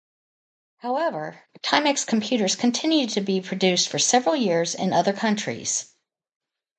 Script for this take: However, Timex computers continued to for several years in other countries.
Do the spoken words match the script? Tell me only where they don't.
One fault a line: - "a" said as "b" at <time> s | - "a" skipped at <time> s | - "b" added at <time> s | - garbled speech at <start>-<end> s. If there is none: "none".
- "be produced" added at 3.2 s